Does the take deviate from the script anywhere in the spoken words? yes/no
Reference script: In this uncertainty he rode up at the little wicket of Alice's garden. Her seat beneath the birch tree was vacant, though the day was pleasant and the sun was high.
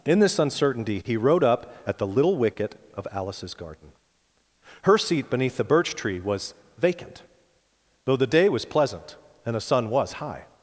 no